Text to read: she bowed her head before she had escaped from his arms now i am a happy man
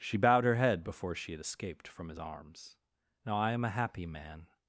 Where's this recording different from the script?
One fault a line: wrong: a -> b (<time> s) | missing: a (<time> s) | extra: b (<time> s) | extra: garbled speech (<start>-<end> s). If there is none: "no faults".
no faults